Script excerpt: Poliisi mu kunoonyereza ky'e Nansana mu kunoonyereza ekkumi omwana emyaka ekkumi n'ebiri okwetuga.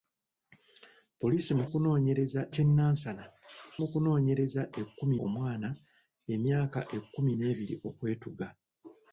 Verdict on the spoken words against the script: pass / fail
pass